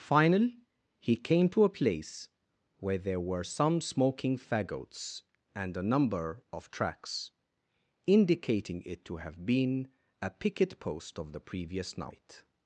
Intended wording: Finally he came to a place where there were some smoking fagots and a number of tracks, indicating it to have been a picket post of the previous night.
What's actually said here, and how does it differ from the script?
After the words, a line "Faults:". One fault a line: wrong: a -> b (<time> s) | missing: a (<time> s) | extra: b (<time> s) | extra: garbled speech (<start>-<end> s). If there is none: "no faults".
Finally he came to a place where there were some smoking fagots and a number of tracks, indicating it to have been a picket post of the previous night.
Faults:
no faults